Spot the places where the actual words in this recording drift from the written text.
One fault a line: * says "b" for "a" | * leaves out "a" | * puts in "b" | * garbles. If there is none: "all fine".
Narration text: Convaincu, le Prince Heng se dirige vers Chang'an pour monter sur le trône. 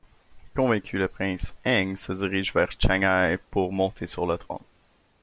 all fine